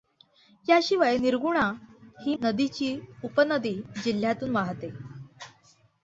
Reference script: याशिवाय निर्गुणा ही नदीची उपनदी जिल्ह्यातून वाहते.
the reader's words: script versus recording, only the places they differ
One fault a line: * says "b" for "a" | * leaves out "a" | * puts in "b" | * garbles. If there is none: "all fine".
all fine